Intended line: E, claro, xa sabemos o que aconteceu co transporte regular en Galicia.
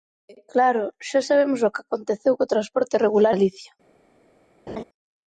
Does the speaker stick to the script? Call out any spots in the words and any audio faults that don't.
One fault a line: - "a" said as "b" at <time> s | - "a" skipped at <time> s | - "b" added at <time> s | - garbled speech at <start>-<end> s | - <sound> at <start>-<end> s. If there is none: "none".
- "en" skipped at 3.3 s
- laugh at 4.7-4.8 s